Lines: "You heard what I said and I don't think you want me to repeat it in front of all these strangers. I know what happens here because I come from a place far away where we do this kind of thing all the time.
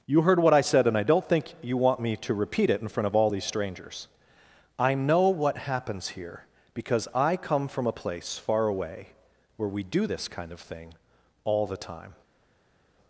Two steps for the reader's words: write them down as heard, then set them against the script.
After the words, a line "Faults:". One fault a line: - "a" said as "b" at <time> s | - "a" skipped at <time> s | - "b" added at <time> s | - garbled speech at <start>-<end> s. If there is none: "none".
"You heard what I said and I don't think you want me to repeat it in front of all these strangers. I know what happens here because I come from a place far away where we do this kind of thing all the time.
Faults:
none